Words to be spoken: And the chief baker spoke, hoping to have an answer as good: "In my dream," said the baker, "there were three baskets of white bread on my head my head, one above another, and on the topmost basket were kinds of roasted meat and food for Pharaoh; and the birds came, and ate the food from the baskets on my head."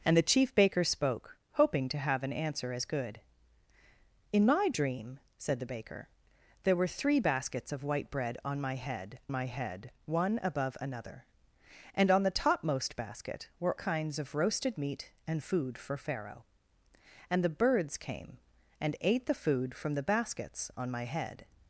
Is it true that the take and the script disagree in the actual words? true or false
false